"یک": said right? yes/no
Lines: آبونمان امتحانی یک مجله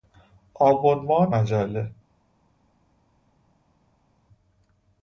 no